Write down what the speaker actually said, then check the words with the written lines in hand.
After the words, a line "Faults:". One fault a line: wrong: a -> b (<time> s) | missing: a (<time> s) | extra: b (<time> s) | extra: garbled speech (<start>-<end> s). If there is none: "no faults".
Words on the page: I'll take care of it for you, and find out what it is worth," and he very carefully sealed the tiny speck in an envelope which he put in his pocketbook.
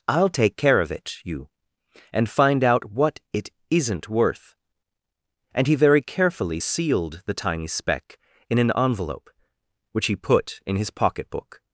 I'll take care of it you, and find out what it isn't worth," and he very carefully sealed the tiny speck in an envelope which he put in his pocketbook.
Faults:
missing: for (1.2 s)
wrong: is -> isn't (3.7 s)